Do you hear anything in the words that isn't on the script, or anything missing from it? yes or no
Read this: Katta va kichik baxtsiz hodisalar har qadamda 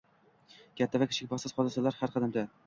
no